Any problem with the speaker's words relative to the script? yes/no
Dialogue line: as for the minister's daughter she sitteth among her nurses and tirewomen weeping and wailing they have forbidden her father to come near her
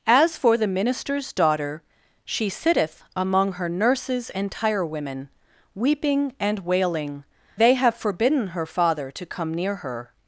no